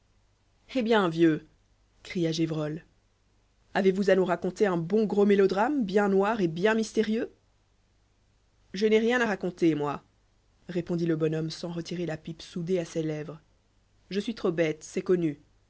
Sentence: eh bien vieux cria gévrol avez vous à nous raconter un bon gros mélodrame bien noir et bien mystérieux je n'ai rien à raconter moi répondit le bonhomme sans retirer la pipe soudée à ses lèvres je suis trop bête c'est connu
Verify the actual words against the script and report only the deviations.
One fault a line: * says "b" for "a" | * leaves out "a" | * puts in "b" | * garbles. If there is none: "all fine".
all fine